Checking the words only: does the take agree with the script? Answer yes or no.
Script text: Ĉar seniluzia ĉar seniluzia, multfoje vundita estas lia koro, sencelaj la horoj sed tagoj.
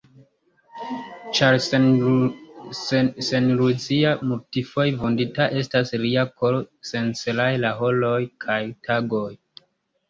no